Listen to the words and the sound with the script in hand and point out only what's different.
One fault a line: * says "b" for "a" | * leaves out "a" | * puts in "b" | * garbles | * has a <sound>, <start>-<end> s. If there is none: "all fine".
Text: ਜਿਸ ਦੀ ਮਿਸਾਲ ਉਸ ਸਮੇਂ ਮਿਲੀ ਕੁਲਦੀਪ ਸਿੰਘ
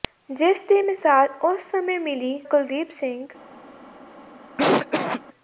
* has a cough, 4.6-5.2 s